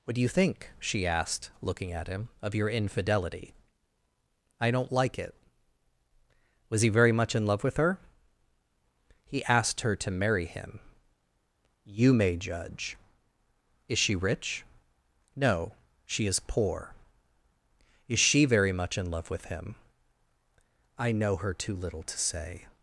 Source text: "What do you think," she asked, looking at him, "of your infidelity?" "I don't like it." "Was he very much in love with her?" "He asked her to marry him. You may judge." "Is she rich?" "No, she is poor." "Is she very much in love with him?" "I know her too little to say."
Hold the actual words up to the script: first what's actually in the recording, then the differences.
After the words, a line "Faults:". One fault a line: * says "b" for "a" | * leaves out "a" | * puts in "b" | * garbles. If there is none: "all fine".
"What do you think," she asked, looking at him, "of your infidelity?" "I don't like it." "Was he very much in love with her?" "He asked her to marry him. You may judge." "Is she rich?" "No, she is poor." "Is she very much in love with him?" "I know her too little to say."
Faults:
all fine